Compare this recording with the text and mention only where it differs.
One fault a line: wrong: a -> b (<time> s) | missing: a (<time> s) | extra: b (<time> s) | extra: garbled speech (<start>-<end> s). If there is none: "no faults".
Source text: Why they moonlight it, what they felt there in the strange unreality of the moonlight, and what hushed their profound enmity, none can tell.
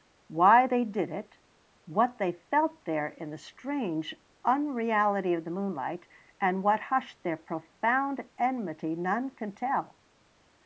wrong: moonlight -> did (0.9 s)